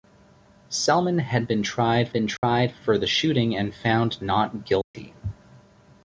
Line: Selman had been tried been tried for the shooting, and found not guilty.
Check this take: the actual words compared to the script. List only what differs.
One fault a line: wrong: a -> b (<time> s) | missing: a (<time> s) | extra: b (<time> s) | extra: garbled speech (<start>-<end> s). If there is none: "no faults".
no faults